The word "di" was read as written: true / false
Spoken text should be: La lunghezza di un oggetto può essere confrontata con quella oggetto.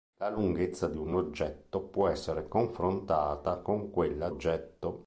true